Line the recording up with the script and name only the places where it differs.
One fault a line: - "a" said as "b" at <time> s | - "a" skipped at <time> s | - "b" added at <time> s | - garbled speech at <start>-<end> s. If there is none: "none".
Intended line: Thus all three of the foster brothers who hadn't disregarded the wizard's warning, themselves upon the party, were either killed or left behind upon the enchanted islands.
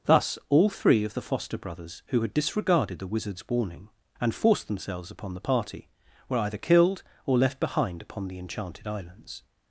- "hadn't" said as "had" at 2.2 s
- "and forced" added at 4.2 s